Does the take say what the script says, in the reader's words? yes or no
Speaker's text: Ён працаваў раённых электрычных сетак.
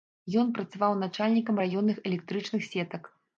no